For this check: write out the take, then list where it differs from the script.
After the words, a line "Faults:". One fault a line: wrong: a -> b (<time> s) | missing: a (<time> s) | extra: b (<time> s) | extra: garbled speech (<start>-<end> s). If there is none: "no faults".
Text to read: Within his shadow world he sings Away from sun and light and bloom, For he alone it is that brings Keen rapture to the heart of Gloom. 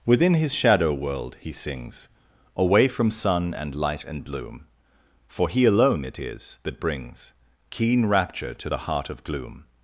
Within his shadow world he sings Away from sun and light and bloom, For he alone it is that brings Keen rapture to the heart of Gloom.
Faults:
no faults